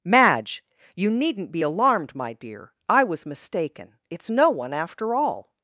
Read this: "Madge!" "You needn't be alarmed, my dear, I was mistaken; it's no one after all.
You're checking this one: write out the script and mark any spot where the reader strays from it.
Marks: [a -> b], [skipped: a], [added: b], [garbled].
"Madge!" "You needn't be alarmed, my dear, I was mistaken; it's no one after all.